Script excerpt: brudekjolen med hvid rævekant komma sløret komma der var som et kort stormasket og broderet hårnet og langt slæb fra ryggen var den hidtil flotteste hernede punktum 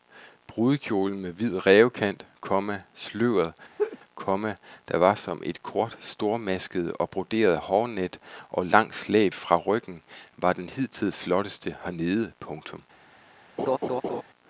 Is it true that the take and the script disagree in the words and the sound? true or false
true